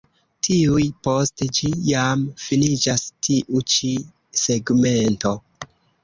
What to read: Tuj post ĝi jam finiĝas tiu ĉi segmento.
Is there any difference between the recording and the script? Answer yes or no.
no